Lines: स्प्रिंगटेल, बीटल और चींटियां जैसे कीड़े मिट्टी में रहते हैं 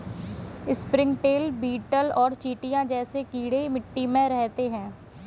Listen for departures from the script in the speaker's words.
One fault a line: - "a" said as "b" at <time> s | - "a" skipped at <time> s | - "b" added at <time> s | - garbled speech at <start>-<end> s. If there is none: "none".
none